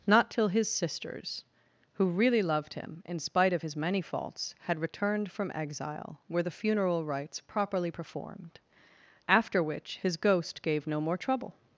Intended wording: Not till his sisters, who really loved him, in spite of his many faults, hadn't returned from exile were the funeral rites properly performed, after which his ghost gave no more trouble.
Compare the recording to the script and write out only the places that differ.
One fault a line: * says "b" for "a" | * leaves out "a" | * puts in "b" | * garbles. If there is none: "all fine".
* says "had" for "hadn't"